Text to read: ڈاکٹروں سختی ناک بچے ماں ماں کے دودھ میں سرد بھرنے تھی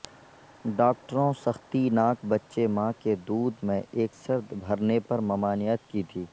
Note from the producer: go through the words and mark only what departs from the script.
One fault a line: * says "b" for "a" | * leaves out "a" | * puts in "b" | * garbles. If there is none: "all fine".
* leaves out "ماں"
* puts in "ایک"
* puts in "پر ممانعت کی"